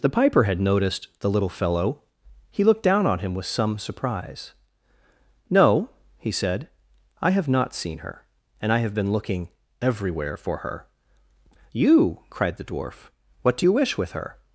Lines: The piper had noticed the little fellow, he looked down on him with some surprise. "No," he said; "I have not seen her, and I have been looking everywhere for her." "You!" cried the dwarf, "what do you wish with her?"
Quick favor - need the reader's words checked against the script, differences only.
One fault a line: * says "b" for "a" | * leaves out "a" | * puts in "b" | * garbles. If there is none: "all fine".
all fine